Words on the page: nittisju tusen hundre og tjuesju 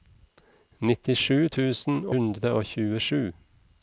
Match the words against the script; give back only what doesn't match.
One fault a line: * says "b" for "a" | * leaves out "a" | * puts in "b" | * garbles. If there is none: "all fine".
all fine